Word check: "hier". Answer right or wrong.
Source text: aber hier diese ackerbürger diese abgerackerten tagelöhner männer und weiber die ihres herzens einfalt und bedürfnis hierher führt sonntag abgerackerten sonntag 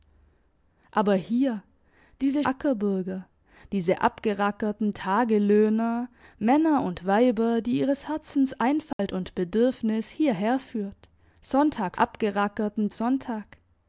right